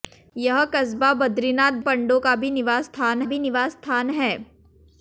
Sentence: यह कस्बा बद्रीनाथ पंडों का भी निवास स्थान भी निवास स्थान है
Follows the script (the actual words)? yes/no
yes